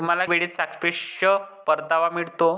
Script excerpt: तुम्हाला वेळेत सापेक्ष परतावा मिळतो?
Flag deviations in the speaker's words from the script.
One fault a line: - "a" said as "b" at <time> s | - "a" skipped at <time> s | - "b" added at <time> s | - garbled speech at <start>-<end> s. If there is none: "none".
none